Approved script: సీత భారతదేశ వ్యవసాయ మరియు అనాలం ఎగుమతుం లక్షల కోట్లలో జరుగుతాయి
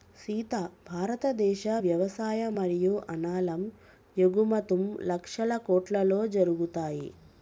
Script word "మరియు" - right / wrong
right